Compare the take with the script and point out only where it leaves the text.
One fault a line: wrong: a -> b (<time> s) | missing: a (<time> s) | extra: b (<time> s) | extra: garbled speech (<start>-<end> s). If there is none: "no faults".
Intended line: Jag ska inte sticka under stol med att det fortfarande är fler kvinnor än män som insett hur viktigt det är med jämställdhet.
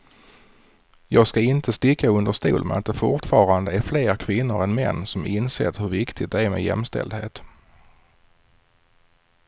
no faults